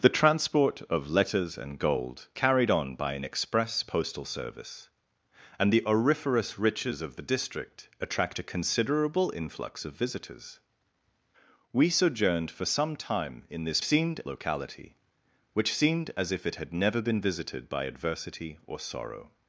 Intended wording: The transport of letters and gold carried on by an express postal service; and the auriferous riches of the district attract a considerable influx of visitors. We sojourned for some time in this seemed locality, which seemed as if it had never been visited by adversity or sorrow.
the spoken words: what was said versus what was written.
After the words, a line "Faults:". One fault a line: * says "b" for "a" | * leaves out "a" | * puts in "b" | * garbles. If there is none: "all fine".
The transport of letters and gold carried on by an express postal service; and the auriferous riches of the district attract a considerable influx of visitors. We sojourned for some time in this seemed locality, which seemed as if it had never been visited by adversity or sorrow.
Faults:
all fine